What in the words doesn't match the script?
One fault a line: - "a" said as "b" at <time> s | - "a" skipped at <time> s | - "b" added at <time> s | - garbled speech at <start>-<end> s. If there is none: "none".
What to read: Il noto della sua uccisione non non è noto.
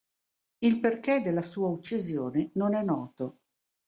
- "noto" said as "perché" at 0.8 s
- "non" skipped at 2.7 s